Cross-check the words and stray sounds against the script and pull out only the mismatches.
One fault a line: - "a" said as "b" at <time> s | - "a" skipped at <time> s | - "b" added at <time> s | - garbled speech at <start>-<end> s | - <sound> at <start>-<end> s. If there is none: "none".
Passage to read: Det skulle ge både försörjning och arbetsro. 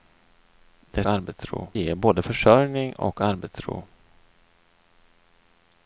- "skulle" said as "arbetsro" at 1.1 s